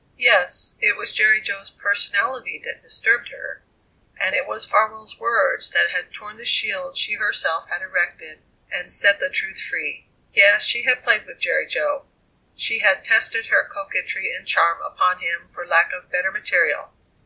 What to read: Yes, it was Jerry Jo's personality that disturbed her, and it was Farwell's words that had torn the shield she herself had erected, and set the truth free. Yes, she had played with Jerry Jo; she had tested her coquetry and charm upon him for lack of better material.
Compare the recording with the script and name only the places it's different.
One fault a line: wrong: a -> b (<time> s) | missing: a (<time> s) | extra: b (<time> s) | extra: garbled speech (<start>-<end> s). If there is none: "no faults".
no faults